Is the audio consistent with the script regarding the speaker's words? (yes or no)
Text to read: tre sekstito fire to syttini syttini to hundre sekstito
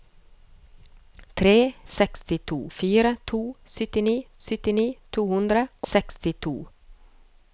yes